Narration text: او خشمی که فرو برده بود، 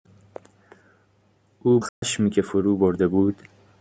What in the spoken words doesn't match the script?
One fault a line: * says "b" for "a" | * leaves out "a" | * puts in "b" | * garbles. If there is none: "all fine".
all fine